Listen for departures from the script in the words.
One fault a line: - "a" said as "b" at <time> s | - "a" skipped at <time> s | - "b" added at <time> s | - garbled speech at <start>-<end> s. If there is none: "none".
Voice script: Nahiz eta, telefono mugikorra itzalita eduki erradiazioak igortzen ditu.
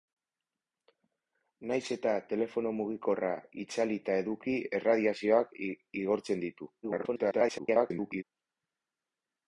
- garbled speech at 6.8-8.2 s